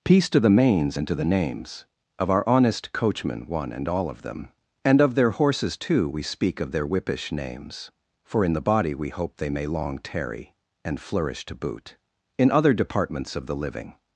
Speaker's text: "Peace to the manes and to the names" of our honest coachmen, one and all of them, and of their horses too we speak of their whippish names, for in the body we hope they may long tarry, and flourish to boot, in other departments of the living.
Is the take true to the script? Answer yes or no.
yes